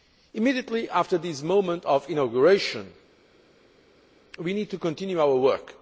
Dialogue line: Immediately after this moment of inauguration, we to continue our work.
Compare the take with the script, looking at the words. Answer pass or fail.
fail